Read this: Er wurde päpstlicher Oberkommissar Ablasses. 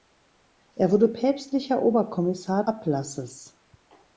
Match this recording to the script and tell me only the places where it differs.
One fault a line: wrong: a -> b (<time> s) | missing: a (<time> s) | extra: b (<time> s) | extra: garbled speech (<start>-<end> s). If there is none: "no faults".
no faults